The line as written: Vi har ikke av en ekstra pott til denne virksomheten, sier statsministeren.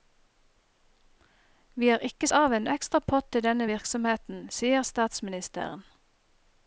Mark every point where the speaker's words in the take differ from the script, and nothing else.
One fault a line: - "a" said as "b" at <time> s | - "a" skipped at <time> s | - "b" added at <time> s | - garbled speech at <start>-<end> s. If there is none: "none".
none